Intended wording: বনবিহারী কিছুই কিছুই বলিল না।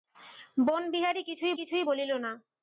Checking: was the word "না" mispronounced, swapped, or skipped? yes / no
no